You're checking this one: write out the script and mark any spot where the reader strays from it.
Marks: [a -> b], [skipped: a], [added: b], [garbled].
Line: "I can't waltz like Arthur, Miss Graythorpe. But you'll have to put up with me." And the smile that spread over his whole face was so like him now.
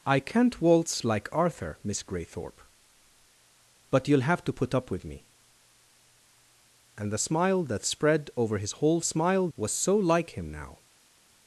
"I can't waltz like Arthur, Miss Graythorpe. But you'll have to put up with me." And the smile that spread over his whole [face -> smile] was so like him now.